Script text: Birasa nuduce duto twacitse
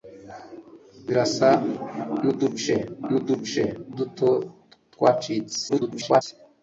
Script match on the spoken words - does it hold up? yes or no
no